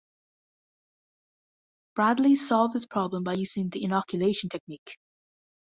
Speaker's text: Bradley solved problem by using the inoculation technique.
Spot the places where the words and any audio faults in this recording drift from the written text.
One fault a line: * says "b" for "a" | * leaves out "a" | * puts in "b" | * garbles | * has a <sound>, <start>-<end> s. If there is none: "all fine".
* puts in "this"